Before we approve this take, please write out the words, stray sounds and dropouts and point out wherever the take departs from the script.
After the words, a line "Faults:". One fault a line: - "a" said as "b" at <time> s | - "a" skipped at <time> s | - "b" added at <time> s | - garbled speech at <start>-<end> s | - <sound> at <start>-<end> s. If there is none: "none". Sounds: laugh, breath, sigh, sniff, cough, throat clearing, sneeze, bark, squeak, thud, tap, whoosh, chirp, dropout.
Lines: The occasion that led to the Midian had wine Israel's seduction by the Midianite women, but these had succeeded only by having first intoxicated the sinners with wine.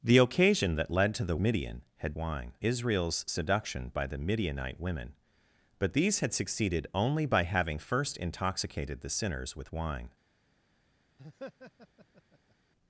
The occasion that led to the Midian had wine Israel's seduction by the Midianite women, but these had succeeded only by having first intoxicated the sinners with wine.
Faults:
- laugh at 11.2-12.6 s